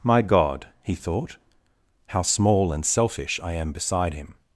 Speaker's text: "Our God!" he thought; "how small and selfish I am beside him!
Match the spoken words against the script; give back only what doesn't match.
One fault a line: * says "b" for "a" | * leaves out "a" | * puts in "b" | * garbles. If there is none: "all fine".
* says "My" for "Our"